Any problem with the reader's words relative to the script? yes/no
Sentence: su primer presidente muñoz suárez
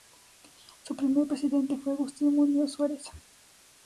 yes